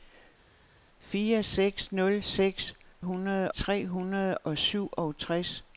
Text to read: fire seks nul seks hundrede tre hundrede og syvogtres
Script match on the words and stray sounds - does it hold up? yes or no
yes